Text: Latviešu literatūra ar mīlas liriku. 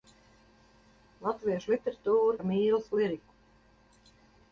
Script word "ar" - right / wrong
right